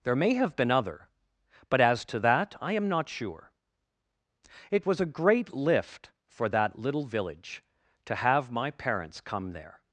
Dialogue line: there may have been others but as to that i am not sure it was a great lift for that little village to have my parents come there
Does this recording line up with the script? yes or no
no